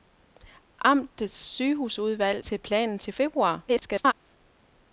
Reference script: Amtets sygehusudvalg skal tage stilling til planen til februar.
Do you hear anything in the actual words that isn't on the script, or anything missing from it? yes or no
yes